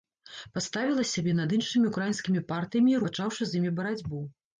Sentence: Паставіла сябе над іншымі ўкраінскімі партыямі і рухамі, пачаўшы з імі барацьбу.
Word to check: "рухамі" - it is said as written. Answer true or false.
false